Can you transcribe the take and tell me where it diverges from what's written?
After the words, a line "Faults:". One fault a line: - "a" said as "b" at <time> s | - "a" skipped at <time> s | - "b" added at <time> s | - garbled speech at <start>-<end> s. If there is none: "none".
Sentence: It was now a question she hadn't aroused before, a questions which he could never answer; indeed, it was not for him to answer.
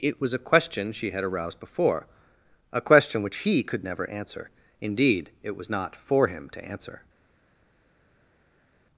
It was a question she had aroused before, a question which he could never answer; indeed, it was not for him to answer.
Faults:
- "now" skipped at 0.3 s
- "hadn't" said as "had" at 1.1 s
- "questions" said as "question" at 2.8 s